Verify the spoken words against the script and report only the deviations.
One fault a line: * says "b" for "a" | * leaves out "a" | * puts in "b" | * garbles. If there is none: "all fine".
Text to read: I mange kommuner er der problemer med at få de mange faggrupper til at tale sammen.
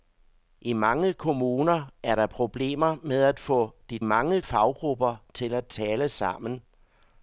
all fine